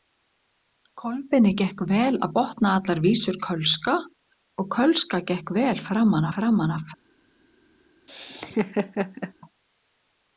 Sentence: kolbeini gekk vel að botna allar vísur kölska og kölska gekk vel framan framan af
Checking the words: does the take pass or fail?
pass